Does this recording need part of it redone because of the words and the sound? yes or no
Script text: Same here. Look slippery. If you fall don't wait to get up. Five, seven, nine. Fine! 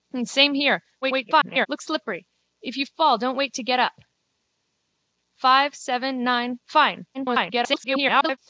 yes